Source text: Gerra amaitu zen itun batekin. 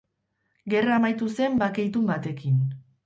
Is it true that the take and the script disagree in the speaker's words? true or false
true